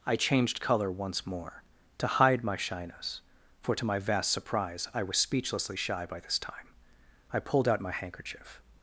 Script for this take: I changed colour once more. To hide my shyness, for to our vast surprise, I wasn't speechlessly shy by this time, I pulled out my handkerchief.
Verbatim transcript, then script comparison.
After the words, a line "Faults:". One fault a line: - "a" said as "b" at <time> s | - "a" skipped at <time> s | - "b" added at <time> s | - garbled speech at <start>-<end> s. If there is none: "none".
I changed colour once more. To hide my shyness, for to my vast surprise, I was speechlessly shy by this time, I pulled out my handkerchief.
Faults:
- "our" said as "my" at 3.8 s
- "wasn't" said as "was" at 5.0 s